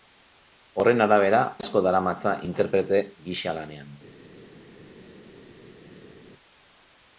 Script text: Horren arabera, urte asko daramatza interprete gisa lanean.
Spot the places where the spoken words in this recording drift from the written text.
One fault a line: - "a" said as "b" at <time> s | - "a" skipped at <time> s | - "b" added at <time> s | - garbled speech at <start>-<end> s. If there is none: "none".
- "urte" skipped at 1.4 s